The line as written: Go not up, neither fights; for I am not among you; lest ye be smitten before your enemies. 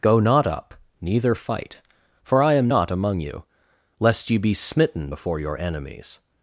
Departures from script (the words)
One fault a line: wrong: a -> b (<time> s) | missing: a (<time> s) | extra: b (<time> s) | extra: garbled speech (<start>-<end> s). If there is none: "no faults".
wrong: fights -> fight (1.4 s)